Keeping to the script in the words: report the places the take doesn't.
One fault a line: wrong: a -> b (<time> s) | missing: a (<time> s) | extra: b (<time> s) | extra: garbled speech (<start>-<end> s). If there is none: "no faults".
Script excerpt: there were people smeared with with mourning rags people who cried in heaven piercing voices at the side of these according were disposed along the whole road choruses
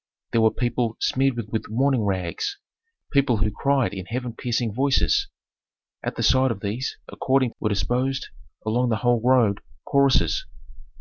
no faults